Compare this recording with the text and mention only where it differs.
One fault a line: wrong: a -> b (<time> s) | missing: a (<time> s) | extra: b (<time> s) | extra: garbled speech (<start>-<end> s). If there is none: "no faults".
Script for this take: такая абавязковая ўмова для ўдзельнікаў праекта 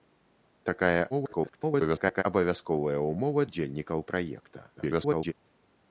extra: garbled speech (1.1-2.2 s)
missing: для (3.5 s)
extra: garbled speech (4.8-5.3 s)